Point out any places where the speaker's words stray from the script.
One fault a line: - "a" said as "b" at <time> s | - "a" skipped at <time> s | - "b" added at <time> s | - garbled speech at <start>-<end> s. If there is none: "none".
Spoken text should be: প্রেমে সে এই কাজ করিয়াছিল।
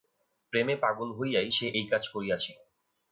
- "পাগল হইয়াই" added at 0.8 s